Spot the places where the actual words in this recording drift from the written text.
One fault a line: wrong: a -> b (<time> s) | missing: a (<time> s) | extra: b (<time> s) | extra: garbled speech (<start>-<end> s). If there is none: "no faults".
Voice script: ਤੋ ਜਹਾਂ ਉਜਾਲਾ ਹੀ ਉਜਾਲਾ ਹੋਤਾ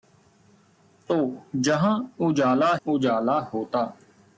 missing: ਹੀ (2.8 s)